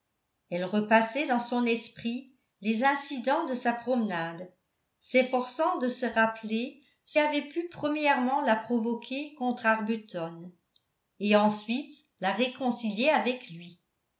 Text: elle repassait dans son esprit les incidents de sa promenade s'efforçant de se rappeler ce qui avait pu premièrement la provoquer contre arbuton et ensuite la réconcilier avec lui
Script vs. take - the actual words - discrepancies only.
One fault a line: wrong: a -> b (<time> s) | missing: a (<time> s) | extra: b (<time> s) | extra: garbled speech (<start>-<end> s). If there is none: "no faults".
missing: qui (7.2 s)